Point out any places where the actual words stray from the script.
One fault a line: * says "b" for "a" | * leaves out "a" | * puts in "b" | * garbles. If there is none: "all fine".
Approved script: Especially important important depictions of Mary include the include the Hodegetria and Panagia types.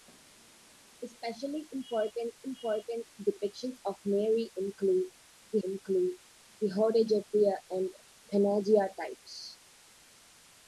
all fine